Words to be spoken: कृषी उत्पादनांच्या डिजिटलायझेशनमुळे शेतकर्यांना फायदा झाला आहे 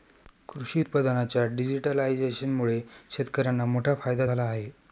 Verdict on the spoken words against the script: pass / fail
fail